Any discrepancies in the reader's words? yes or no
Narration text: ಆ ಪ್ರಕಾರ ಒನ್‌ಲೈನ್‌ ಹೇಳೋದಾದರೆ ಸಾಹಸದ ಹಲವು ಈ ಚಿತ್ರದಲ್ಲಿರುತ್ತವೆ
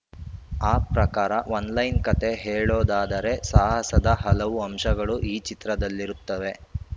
yes